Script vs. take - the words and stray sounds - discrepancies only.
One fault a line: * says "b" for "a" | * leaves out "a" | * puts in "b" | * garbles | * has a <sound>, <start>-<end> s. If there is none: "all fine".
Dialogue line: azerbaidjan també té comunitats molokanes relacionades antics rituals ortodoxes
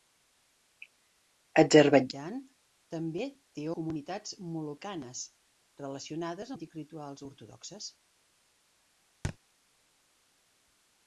* has a thud, 9.2-9.4 s